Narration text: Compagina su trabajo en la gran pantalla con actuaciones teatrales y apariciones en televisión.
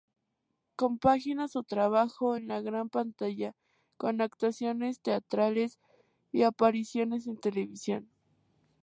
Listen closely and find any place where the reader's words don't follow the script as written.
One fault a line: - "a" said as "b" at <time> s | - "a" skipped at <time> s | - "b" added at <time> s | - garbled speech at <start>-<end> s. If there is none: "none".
none